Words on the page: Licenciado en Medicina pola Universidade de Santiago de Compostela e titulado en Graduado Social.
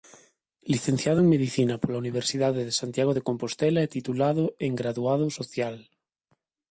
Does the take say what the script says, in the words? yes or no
yes